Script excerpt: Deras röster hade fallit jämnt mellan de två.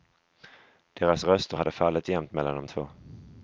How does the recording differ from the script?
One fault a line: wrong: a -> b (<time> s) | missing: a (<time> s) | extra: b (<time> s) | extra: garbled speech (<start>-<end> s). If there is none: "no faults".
no faults